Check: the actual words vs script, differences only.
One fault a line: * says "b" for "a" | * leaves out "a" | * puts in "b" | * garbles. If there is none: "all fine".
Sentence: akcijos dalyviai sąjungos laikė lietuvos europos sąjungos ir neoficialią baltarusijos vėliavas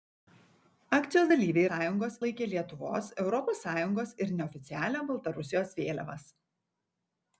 all fine